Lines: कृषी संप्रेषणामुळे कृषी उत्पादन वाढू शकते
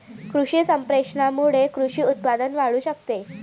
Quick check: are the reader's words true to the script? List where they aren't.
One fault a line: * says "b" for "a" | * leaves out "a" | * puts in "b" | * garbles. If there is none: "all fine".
all fine